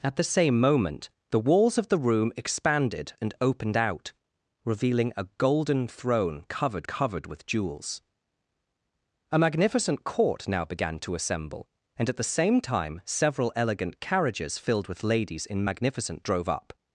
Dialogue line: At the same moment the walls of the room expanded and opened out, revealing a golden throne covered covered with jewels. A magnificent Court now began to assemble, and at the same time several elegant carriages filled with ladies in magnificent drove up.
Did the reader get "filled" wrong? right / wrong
right